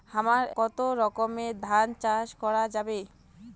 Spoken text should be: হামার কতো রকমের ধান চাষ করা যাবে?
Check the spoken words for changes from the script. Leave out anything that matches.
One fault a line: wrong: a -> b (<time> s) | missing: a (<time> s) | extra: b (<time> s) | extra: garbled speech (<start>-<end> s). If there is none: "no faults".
no faults